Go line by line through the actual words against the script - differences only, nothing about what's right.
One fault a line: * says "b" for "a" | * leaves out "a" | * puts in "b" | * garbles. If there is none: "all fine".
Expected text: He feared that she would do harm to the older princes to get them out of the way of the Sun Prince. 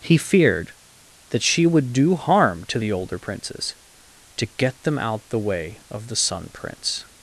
* leaves out "of"